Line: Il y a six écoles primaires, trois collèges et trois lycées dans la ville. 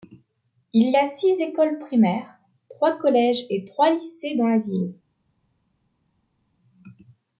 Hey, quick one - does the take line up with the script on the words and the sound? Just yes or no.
yes